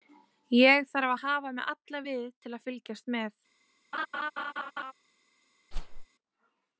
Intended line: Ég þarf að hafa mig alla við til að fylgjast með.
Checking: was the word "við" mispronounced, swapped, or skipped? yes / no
no